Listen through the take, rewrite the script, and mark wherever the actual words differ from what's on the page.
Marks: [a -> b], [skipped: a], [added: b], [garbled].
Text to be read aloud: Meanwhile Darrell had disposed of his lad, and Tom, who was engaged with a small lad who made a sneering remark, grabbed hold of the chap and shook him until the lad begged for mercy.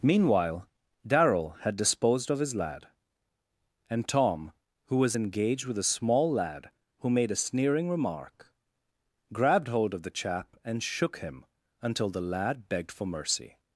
Meanwhile Darrell had disposed of his lad, and Tom, who was engaged with a small lad who made a sneering remark, grabbed hold of the chap and shook him until the lad begged for mercy.